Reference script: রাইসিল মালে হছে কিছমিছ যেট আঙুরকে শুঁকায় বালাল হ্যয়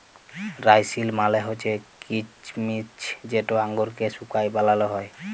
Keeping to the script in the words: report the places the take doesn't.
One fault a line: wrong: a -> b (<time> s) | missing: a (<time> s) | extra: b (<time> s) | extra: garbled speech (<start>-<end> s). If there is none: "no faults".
no faults